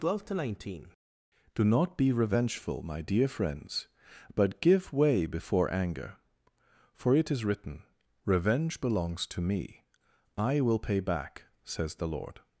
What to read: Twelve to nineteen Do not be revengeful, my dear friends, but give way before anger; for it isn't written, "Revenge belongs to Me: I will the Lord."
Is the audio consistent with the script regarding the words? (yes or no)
no